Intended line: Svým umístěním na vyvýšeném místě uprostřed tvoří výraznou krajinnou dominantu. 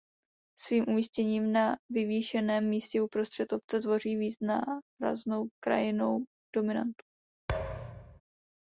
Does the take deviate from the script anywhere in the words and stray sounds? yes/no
yes